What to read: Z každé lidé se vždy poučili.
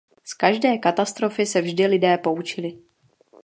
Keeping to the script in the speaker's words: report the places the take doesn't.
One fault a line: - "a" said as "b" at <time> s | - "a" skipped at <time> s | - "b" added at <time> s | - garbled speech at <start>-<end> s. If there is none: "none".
- "lidé" said as "katastrofy" at 0.8 s
- "lidé" added at 1.9 s